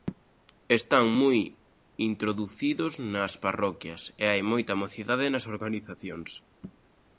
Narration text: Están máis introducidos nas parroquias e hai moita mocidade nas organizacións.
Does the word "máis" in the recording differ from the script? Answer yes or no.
yes